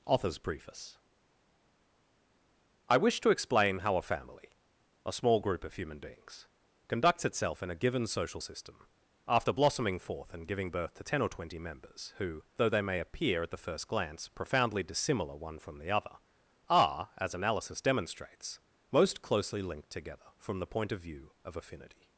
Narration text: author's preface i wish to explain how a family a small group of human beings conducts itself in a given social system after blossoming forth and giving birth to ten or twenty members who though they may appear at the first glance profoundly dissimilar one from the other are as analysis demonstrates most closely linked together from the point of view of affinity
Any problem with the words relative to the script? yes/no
no